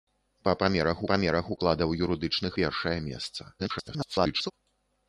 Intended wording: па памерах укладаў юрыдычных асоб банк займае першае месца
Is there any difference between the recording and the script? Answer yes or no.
yes